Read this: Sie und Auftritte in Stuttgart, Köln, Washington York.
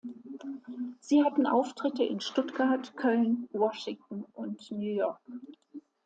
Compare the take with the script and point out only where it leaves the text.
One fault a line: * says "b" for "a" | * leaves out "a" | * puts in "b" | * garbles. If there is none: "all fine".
* says "hatten" for "und"
* puts in "und New"